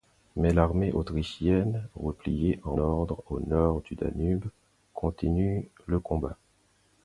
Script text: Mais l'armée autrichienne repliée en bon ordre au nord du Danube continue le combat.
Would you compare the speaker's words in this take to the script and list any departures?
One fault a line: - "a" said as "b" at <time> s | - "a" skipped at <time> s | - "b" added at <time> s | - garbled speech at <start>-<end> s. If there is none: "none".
- "bon" skipped at 2.8 s